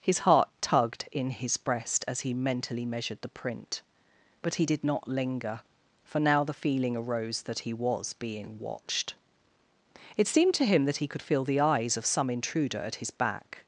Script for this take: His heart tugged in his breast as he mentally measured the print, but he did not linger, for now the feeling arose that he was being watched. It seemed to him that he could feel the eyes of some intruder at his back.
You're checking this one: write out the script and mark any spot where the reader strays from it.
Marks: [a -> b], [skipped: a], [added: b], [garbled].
His heart tugged in his breast as he mentally measured the print, but he did not linger, for now the feeling arose that he was being watched. It seemed to him that he could feel the eyes of some intruder at his back.